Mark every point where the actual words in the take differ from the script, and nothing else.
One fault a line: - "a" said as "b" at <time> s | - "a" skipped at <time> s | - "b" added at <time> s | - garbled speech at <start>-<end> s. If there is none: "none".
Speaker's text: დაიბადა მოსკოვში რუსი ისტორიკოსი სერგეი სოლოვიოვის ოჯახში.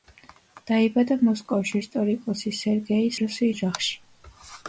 - "რუსი" skipped at 1.8 s
- "სოლოვიოვის" said as "რუსი" at 3.2 s